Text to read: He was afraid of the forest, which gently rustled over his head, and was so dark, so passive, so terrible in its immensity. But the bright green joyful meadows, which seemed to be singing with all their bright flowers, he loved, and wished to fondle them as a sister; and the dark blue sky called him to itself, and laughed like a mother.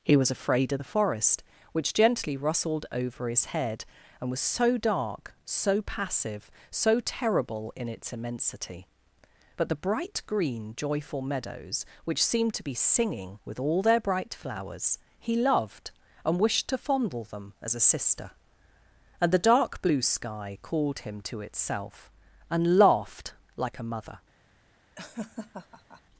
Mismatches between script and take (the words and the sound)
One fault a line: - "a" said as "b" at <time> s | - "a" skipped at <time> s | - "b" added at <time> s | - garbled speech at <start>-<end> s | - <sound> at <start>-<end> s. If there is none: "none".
- laugh at 25.0-26.0 s